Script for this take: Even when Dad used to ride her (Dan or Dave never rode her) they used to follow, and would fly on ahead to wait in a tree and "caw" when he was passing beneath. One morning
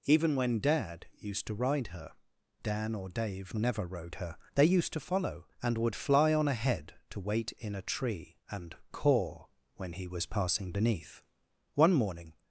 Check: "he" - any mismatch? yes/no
no